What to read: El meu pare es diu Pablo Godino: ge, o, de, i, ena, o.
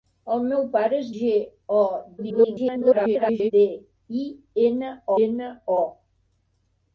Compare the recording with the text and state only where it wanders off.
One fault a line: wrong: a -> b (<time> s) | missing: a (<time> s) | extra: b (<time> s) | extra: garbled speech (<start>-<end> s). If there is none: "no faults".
missing: diu Pablo Godino (1.1 s)
extra: garbled speech (2.2-3.5 s)
extra: ena (5.3 s)